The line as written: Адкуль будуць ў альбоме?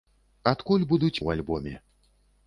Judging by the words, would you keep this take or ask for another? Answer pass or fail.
pass